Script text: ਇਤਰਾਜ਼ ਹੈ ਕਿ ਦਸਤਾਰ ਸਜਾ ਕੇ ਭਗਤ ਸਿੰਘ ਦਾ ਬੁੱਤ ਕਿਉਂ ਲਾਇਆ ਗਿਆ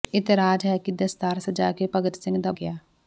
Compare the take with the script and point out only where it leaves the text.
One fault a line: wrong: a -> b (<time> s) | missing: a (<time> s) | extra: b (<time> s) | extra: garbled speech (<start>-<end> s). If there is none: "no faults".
missing: ਬੁੱਤ ਕਿਉਂ ਲਾਇਆ (2.5 s)